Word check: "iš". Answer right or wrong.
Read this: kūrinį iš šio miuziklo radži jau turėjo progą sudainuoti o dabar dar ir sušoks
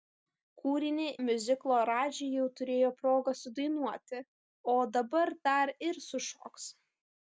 wrong